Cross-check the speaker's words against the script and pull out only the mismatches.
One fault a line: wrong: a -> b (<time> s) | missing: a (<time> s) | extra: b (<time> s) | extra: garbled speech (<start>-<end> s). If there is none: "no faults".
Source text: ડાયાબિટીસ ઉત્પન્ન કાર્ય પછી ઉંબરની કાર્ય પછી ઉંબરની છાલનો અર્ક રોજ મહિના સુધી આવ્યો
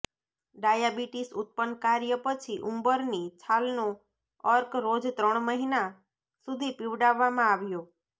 missing: કાર્ય પછી ઉંબરની (3.3 s)
extra: ત્રણ (5.1 s)
extra: પીવડાવવામાં (6.8 s)